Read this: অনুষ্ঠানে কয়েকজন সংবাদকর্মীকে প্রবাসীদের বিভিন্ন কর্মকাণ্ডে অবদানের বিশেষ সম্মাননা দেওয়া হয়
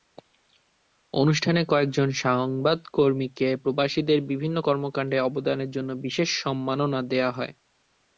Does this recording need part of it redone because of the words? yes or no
yes